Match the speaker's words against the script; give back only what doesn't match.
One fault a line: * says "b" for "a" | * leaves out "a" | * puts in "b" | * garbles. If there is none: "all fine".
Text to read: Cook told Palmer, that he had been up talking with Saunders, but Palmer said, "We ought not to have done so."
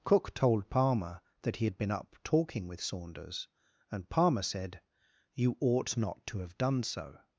* says "and" for "but"
* says "You" for "We"